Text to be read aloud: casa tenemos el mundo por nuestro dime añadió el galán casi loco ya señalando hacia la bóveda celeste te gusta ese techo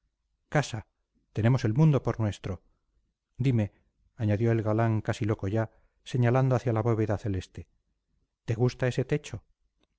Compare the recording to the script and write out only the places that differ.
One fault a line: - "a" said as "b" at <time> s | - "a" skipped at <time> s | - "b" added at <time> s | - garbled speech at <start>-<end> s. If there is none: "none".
none